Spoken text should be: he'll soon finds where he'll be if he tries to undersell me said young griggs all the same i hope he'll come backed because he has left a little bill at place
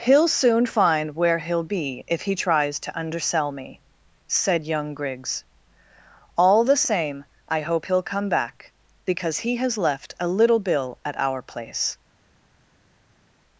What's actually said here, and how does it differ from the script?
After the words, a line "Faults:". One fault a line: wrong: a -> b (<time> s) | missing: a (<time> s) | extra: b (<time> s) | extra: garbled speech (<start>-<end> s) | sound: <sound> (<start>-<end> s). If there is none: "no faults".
he'll soon find where he'll be if he tries to undersell me said young griggs all the same i hope he'll come back because he has left a little bill at our place
Faults:
wrong: finds -> find (0.7 s)
wrong: backed -> back (8.3 s)
extra: our (11.2 s)